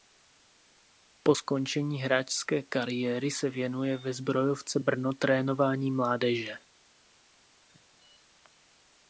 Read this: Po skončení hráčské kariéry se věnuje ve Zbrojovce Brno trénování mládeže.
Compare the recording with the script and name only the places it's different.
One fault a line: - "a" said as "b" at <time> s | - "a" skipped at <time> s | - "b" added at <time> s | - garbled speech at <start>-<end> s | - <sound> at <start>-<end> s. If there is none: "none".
none